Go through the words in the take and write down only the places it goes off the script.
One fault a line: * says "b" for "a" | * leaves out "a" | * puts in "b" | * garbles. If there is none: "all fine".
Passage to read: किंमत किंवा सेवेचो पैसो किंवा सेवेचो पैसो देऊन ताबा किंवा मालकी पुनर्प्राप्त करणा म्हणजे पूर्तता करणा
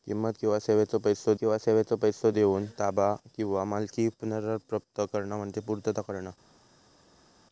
all fine